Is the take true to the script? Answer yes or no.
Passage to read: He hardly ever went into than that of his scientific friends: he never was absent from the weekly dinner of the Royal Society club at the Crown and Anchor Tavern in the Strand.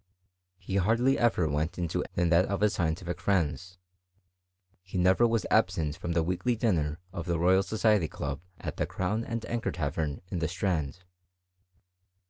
yes